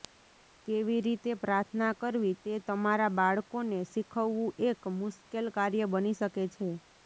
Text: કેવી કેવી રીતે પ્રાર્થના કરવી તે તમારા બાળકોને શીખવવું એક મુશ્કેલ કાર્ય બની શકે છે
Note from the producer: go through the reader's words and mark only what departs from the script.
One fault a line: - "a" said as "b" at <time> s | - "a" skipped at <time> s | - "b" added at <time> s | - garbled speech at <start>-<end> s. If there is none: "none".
- "કેવી" skipped at 1.0 s